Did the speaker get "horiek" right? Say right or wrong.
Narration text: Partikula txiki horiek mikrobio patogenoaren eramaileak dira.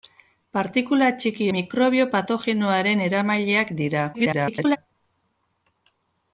wrong